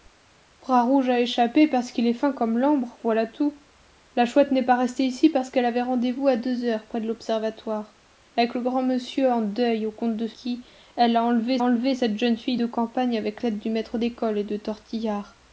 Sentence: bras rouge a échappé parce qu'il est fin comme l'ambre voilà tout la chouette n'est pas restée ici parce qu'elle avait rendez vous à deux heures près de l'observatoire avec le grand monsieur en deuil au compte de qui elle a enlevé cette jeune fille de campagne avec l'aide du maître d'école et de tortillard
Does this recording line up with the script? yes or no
no